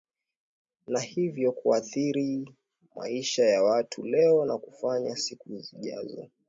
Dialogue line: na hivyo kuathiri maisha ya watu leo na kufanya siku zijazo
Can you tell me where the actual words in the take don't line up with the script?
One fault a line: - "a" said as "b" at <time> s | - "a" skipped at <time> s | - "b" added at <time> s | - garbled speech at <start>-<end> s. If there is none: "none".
none